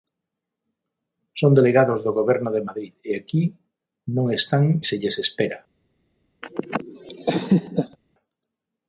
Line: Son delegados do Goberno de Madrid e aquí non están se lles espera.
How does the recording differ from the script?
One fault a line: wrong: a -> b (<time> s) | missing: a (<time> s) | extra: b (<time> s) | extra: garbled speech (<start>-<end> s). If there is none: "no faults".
no faults